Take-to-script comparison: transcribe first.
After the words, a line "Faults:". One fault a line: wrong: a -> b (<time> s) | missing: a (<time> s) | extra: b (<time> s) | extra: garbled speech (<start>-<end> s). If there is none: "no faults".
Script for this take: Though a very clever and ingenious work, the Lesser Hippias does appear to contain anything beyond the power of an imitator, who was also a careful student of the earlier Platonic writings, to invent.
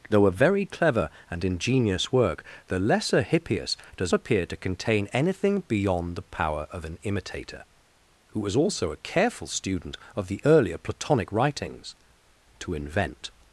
Though a very clever and ingenious work, the Lesser Hippias does appear to contain anything beyond the power of an imitator, who was also a careful student of the earlier Platonic writings, to invent.
Faults:
no faults